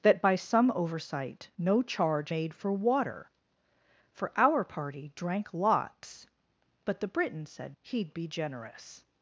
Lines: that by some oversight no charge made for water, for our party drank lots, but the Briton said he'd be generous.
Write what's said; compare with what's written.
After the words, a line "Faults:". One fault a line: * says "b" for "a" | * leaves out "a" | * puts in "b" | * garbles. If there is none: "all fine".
that by some oversight no charge made for water, for our party drank lots, but the Briton said he'd be generous.
Faults:
all fine